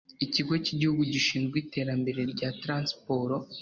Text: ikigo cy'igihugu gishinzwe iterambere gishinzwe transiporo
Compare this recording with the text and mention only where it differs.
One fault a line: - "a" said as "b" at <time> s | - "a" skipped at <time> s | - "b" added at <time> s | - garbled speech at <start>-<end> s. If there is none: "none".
- "gishinzwe" said as "rya" at 2.3 s